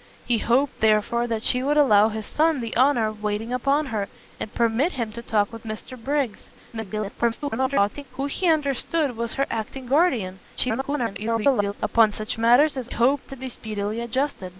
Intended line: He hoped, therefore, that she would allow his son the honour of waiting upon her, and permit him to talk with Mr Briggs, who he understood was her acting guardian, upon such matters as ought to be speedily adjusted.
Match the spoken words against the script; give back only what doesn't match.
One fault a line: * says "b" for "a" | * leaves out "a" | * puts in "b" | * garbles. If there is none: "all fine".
* garbles
* garbles
* says "hoped" for "ought"